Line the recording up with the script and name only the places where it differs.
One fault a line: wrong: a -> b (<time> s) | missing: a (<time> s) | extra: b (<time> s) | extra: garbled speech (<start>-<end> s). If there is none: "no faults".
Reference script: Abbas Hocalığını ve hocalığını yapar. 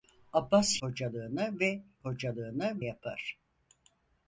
no faults